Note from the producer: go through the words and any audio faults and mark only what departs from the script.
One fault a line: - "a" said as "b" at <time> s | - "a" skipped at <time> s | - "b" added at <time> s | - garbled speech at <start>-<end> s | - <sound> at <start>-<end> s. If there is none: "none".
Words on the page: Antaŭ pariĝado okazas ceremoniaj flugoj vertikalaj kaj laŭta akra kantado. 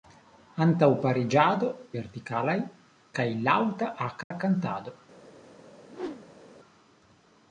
- "okazas ceremoniaj flugoj" skipped at 1.7 s
- dropout at 4.2-4.3 s
- whoosh at 5.9-6.4 s